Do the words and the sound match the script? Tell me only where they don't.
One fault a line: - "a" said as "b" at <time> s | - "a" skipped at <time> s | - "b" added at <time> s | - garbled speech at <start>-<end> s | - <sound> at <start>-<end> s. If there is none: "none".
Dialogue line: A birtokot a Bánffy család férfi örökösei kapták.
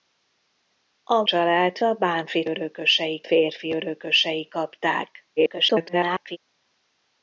- "birtokot" said as "család" at 1.2 s
- "család" said as "örökösei" at 2.5 s
- garbled speech at 5.4-6.4 s